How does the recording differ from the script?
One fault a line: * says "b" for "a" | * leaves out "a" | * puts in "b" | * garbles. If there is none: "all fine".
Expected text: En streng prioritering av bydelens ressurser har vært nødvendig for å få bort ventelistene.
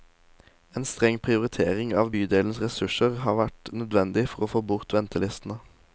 all fine